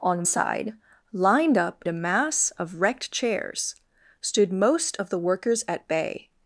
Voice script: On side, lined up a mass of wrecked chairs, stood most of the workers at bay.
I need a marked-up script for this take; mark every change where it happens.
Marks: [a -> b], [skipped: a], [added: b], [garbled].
On side, lined up a mass of wrecked chairs, stood most of the workers at bay.